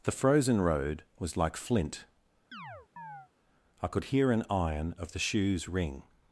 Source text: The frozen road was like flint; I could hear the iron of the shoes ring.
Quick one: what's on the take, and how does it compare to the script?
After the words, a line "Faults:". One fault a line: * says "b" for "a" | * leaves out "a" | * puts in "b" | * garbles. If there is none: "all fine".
The frozen road was like flint; I could hear an iron of the shoes ring.
Faults:
* says "an" for "the"